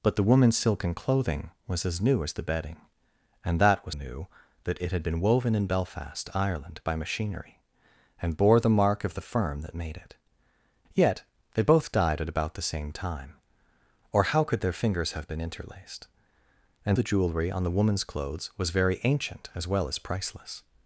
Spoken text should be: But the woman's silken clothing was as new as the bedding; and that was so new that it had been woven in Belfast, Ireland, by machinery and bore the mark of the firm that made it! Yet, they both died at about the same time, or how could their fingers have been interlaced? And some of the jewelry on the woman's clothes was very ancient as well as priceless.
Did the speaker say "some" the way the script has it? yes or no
no